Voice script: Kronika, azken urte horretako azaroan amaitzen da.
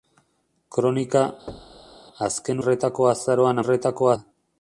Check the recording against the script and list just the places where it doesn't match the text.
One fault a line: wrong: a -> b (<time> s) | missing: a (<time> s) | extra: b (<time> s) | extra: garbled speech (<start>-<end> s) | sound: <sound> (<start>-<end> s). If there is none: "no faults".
sound: thud (1.5-2.0 s)
missing: urte (2.6 s)
wrong: amaitzen -> horretako (3.6 s)